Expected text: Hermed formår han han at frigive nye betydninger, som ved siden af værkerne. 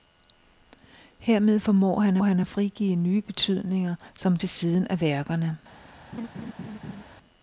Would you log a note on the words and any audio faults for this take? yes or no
yes